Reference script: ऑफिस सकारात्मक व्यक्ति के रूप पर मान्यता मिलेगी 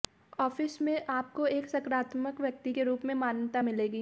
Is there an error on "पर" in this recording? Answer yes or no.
yes